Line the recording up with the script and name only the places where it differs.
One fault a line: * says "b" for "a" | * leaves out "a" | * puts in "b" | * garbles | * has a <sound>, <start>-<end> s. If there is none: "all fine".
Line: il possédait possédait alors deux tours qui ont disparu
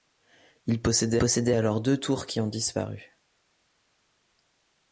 all fine